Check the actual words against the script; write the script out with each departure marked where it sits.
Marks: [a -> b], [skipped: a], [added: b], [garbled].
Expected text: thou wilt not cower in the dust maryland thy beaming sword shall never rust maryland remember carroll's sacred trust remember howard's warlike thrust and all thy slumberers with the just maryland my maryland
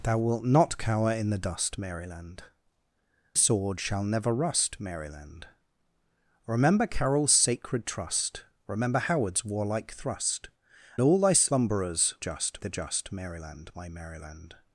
thou wilt not cower in the dust maryland [skipped: thy beaming] sword shall never rust maryland remember carroll's sacred trust remember howard's warlike thrust [skipped: and] all thy slumberers [with -> just] the just maryland my maryland